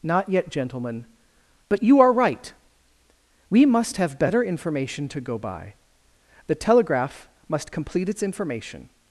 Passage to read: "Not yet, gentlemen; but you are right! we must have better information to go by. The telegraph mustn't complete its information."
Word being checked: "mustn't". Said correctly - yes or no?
no